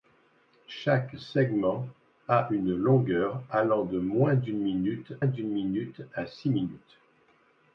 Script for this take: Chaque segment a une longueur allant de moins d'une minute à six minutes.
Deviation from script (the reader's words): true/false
true